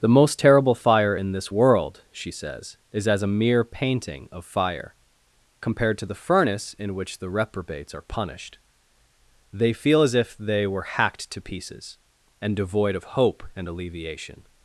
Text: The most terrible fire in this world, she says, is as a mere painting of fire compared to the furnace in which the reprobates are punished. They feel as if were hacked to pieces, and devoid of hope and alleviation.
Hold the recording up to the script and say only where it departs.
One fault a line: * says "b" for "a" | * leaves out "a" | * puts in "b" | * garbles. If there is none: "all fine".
* puts in "they"